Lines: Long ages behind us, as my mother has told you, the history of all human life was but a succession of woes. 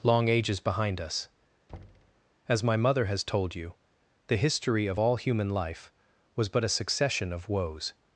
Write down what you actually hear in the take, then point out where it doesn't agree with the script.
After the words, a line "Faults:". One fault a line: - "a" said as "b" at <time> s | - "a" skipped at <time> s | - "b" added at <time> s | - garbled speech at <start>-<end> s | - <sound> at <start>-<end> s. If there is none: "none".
Long ages behind us, as my mother has told you, the history of all human life was but a succession of woes.
Faults:
- thud at 1.7-2.2 s